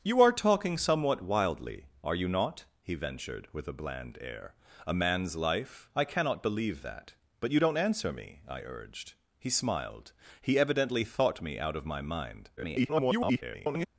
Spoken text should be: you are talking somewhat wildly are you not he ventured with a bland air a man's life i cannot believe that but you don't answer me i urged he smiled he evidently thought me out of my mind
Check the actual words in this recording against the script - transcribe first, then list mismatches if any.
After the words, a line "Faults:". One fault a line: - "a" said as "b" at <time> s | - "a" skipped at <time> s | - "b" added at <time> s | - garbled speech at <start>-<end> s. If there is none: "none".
you are talking somewhat wildly are you not he ventured with a bland air a man's life i cannot believe that but you don't answer me i urged he smiled he evidently thought me out of my mind [garbled]
Faults:
- garbled speech at 12.6-13.9 s